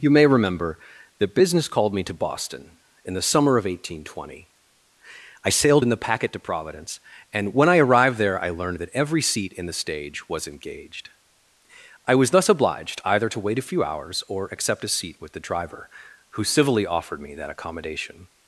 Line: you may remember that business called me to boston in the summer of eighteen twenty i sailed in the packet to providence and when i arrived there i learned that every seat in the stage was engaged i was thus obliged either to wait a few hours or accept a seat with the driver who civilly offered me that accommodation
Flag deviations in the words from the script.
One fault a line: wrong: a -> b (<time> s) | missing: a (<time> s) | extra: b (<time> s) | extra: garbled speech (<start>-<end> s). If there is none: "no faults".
no faults